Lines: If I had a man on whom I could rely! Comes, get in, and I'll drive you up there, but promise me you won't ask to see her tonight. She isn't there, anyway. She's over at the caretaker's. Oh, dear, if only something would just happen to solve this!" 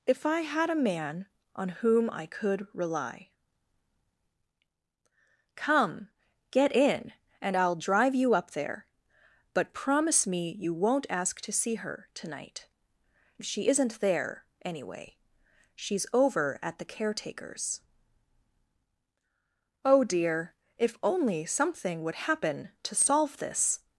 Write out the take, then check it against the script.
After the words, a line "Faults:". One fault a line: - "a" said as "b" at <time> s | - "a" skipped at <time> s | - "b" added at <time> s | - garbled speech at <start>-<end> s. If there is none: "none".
If I had a man on whom I could rely! Come, get in, and I'll drive you up there, but promise me you won't ask to see her tonight. She isn't there, anyway. She's over at the caretaker's. Oh, dear, if only something would happen to solve this!"
Faults:
- "Comes" said as "Come" at 5.5 s
- "just" skipped at 22.2 s